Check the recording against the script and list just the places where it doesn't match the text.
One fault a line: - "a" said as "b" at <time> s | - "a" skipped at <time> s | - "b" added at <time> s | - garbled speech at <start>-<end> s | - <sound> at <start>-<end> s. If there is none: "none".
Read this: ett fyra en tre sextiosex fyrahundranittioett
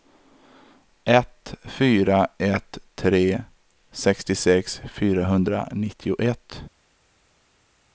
- "en" said as "ett" at 2.4 s